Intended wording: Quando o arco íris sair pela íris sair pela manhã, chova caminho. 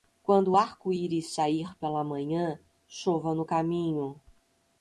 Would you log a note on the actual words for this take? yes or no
yes